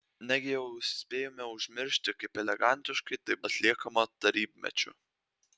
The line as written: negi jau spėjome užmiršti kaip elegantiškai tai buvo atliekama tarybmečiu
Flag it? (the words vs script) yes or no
yes